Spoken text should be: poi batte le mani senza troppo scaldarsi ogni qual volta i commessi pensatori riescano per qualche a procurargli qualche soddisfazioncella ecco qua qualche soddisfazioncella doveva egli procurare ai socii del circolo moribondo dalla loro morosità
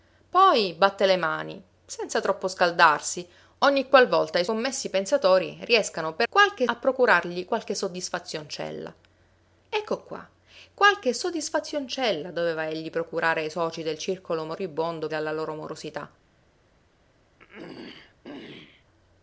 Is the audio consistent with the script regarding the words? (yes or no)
yes